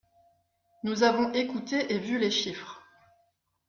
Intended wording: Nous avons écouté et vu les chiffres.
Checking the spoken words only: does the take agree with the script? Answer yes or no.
yes